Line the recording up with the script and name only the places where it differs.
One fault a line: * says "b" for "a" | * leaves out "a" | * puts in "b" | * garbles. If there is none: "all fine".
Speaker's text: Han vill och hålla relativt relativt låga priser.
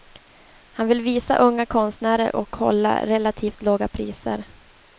* puts in "visa unga konstnärer"
* leaves out "relativt"